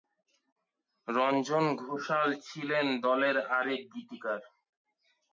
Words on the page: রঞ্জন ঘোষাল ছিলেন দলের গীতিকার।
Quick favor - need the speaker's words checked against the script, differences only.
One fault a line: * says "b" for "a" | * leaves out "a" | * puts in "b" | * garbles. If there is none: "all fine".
* puts in "আরেক"